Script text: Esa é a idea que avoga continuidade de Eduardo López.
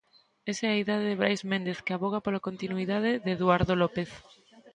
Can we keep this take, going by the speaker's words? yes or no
no